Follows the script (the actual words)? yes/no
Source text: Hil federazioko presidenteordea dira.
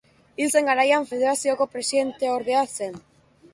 no